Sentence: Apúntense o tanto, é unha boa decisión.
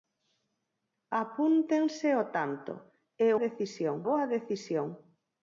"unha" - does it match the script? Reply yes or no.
no